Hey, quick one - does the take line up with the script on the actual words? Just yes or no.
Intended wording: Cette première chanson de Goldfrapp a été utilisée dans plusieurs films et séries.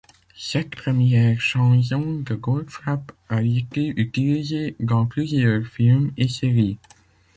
yes